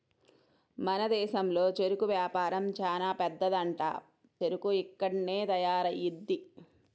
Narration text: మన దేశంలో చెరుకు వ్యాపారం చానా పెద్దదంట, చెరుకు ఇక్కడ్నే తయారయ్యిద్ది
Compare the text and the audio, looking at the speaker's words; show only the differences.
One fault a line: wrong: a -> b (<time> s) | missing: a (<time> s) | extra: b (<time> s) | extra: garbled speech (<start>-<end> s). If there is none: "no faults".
no faults